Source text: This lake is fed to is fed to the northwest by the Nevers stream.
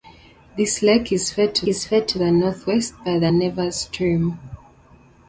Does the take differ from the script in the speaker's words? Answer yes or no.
no